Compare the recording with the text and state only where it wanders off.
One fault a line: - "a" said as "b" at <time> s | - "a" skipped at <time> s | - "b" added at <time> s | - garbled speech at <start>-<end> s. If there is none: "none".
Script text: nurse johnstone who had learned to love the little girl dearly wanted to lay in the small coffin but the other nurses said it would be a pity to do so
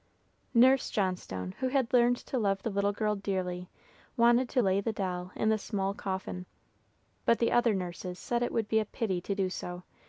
- "the doll" added at 4.8 s